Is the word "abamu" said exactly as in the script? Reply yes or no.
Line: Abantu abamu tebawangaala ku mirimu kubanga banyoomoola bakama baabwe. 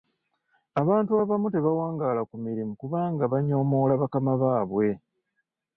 yes